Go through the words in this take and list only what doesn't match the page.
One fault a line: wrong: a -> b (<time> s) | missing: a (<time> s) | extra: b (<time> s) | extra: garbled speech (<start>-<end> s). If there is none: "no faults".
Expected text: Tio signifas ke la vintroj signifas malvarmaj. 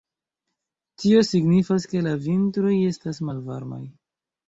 wrong: signifas -> estas (2.9 s)